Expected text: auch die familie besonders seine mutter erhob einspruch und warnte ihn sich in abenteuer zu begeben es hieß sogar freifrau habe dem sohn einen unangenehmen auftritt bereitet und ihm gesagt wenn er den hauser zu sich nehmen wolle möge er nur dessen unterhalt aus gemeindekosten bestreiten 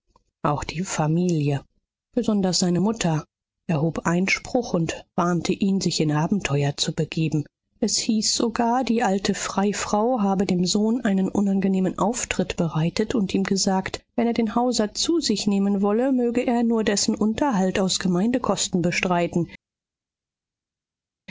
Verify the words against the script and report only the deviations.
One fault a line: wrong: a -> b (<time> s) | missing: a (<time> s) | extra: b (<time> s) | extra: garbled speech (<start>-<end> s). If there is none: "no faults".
extra: die alte (8.8 s)